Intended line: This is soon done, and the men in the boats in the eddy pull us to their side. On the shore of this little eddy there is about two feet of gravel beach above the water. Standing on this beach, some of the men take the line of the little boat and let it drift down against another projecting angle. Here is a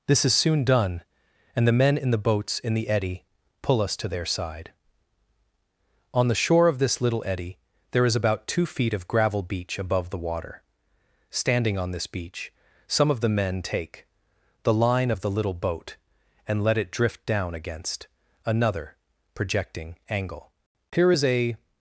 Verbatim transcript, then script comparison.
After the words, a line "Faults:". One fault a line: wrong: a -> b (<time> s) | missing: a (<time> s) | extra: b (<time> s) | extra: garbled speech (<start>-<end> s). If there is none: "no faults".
This is soon done, and the men in the boats in the eddy pull us to their side. On the shore of this little eddy there is about two feet of gravel beach above the water. Standing on this beach, some of the men take the line of the little boat and let it drift down against another projecting angle. Here is a
Faults:
no faults